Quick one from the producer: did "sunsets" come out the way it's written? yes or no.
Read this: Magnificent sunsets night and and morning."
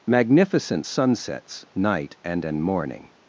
yes